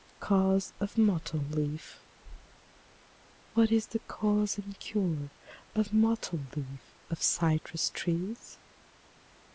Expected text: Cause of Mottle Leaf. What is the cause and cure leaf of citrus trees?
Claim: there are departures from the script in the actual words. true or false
true